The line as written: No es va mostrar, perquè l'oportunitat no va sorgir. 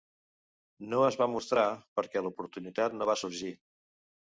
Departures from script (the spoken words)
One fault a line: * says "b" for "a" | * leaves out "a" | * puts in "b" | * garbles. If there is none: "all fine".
all fine